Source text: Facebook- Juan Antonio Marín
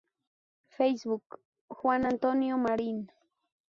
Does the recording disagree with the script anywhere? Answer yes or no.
no